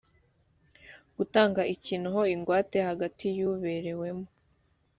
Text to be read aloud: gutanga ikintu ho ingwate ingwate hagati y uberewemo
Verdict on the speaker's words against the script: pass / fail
fail